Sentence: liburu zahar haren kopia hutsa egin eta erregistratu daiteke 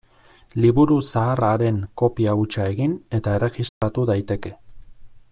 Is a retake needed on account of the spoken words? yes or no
no